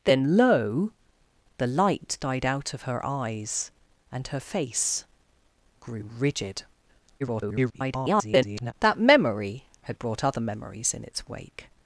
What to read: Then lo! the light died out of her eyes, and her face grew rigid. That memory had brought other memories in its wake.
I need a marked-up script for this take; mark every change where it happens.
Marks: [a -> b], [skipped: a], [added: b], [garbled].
Then lo! the light died out of her eyes, and her face grew rigid. [garbled] That memory had brought other memories in its wake.